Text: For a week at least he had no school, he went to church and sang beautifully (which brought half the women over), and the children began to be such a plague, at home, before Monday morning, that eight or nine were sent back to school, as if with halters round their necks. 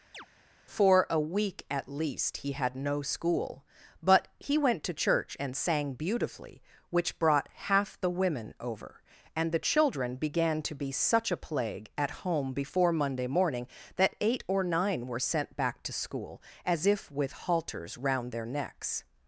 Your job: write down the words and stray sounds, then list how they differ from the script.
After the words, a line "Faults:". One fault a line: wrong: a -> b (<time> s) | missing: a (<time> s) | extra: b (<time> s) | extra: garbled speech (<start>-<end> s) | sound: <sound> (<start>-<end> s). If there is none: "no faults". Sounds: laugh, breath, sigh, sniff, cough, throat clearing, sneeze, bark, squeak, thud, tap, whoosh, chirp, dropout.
For a week at least he had no school, but he went to church and sang beautifully (which brought half the women over), and the children began to be such a plague, at home, before Monday morning, that eight or nine were sent back to school, as if with halters round their necks.
Faults:
sound: chirp (0.1-0.3 s)
extra: but (4.0 s)